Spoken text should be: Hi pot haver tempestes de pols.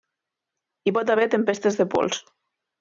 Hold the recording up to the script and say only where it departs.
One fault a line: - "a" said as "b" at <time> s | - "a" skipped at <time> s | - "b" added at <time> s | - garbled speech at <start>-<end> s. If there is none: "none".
none